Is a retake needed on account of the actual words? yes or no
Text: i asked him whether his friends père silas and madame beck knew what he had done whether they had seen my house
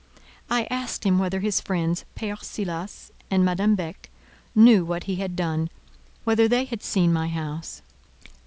no